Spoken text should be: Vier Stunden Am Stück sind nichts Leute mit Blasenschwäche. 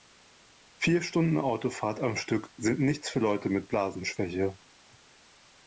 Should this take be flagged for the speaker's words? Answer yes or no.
yes